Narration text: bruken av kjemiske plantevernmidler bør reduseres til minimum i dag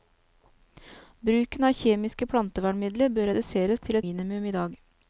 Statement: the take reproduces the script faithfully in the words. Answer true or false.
true